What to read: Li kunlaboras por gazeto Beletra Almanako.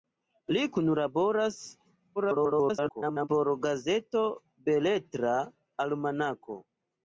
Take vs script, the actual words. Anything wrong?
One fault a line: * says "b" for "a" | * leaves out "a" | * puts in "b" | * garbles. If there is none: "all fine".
* garbles